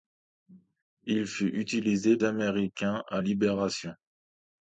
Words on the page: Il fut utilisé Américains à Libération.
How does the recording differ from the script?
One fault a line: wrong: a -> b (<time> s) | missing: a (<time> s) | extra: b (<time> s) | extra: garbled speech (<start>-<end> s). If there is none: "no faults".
no faults